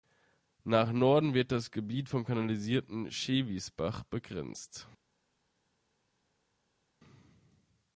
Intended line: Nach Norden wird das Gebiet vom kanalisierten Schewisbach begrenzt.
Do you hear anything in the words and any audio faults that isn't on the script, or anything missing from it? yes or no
no